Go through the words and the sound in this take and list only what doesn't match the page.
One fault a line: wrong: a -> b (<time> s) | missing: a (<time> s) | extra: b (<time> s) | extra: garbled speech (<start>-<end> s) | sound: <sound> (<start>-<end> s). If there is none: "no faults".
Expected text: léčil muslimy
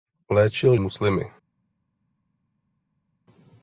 no faults